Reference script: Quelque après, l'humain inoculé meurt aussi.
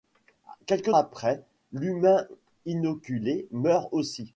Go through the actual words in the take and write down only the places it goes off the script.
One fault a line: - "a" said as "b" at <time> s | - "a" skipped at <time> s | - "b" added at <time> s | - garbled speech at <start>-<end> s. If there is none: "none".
none